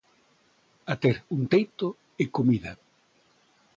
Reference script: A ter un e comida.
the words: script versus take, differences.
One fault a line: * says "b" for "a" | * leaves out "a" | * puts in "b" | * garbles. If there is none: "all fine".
* puts in "teito"